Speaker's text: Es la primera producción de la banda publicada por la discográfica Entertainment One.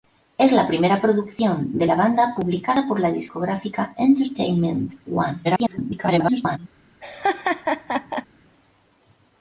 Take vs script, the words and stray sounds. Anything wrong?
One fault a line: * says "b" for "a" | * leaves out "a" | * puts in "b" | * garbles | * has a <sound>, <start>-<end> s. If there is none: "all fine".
* garbles
* has a laugh, 7.0-8.3 s